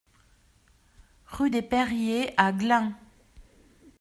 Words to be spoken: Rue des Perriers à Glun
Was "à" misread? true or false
false